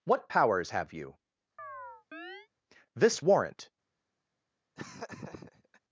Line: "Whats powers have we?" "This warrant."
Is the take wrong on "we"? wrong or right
wrong